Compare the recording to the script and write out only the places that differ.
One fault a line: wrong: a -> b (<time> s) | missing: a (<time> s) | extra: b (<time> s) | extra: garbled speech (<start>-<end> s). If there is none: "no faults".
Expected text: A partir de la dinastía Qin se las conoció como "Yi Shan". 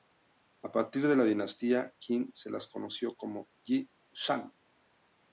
no faults